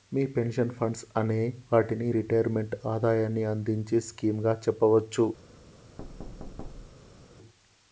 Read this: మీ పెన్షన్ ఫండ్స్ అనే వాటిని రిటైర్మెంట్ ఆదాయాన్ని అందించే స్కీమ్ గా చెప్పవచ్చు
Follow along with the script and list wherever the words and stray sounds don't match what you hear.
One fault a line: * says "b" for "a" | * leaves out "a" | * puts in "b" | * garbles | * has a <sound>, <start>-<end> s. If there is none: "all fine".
* has a thud, 6.0-7.3 s